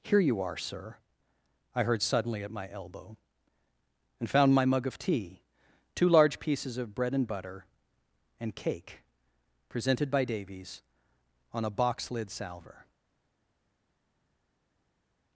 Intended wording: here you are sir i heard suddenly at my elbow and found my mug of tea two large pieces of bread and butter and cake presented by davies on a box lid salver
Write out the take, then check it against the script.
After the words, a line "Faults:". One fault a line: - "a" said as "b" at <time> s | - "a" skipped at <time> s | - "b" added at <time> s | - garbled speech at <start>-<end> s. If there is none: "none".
here you are sir i heard suddenly at my elbow and found my mug of tea two large pieces of bread and butter and cake presented by davies on a box lid salver
Faults:
none